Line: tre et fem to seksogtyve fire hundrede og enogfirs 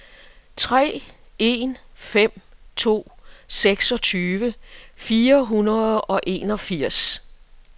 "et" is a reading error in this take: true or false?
true